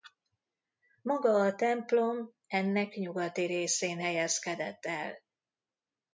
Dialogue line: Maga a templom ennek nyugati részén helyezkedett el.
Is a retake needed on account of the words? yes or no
no